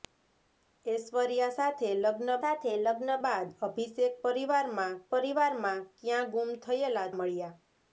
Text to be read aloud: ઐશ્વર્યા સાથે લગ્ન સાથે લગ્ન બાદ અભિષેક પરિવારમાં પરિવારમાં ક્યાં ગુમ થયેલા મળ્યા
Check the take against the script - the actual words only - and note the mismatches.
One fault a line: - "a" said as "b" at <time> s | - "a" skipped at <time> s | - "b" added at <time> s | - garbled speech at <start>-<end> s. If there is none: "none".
none